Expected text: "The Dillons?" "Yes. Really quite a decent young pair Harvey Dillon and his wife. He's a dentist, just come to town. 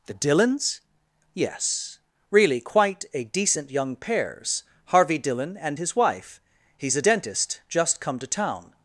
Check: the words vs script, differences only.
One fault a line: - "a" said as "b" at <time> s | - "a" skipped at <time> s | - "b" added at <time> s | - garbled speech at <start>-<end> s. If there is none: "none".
- "pair" said as "pairs" at 4.0 s